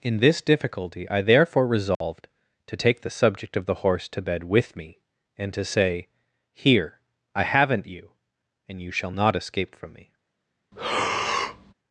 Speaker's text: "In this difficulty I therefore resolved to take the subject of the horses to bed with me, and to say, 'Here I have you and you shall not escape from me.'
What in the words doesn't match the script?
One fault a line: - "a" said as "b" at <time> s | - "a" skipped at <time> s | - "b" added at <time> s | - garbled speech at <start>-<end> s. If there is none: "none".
- "horses" said as "horse" at 3.8 s
- "have" said as "haven't" at 7.4 s